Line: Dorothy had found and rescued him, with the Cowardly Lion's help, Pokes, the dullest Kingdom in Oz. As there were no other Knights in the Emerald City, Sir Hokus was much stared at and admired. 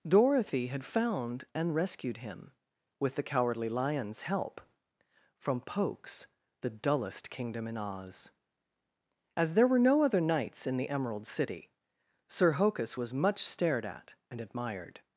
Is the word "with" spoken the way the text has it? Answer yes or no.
yes